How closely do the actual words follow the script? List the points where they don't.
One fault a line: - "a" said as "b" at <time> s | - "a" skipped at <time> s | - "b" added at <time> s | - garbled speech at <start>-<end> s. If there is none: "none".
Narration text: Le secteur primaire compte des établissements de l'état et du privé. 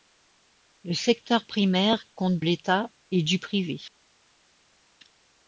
- "des établissements de" skipped at 2.4 s